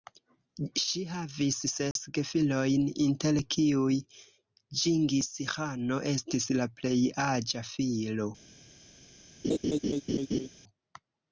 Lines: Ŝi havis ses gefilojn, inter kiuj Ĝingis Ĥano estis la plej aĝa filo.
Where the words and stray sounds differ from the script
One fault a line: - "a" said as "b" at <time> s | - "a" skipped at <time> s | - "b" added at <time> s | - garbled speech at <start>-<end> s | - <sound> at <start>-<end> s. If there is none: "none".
- dropout at 1.9-2.0 s
- laugh at 9.4-10.5 s